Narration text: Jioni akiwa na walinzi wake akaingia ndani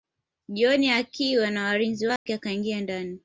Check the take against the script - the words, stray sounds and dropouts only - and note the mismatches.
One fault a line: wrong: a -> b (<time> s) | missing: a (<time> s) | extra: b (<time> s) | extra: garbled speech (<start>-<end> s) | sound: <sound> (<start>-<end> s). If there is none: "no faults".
sound: dropout (2.2-2.3 s)